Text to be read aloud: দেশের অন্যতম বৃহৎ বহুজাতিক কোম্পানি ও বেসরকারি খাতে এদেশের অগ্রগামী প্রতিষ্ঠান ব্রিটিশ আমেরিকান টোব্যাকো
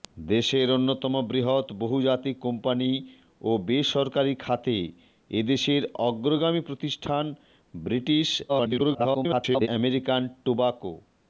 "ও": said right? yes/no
yes